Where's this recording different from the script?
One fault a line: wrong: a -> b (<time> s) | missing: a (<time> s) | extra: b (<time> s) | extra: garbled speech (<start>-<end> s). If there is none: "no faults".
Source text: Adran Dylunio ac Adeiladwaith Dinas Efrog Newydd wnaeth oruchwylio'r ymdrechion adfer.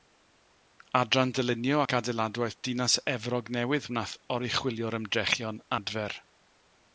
no faults